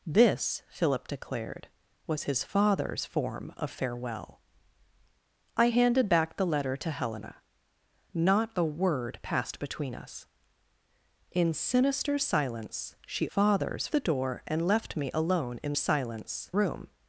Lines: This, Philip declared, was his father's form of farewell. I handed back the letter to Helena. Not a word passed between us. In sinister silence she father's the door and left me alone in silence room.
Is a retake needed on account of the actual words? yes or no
no